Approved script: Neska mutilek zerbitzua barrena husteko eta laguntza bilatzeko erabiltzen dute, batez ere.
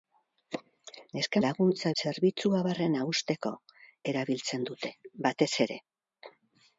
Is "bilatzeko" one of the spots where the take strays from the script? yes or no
yes